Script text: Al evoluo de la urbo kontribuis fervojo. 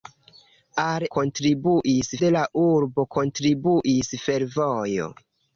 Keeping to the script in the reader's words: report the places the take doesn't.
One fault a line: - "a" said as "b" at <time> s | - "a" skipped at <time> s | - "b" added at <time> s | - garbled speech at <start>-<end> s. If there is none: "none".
- "evoluo" said as "kontribuis" at 1.2 s